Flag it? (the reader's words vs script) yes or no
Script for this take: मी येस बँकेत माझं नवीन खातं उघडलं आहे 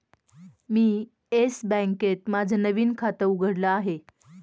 no